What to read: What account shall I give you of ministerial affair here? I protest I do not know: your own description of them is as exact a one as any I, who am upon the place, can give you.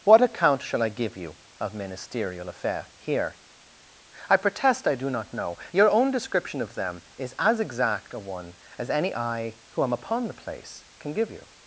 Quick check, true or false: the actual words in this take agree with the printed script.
true